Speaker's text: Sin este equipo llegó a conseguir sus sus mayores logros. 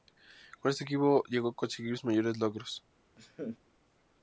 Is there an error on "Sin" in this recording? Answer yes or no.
yes